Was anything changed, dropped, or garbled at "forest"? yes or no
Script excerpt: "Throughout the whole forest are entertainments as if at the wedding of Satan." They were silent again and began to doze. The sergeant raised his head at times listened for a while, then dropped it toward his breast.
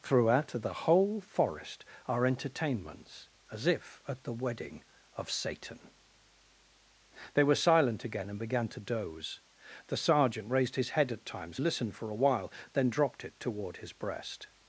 no